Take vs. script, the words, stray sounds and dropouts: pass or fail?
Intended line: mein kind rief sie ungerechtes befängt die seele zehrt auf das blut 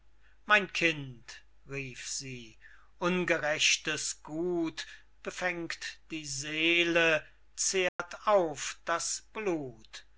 fail